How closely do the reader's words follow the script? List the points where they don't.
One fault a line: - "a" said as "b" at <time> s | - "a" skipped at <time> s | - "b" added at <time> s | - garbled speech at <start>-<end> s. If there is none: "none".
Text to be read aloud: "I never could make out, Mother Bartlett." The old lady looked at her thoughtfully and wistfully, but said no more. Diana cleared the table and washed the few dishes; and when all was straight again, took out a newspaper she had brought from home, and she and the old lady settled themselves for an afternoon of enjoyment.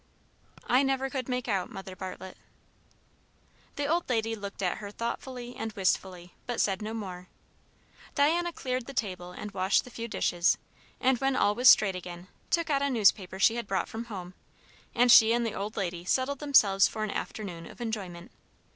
none